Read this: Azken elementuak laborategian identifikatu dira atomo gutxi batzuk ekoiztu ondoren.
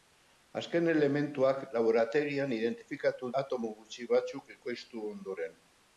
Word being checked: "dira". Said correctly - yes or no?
no